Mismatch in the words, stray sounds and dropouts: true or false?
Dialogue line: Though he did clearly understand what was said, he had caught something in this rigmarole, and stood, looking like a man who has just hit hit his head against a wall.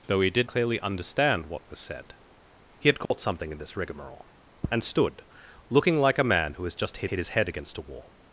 true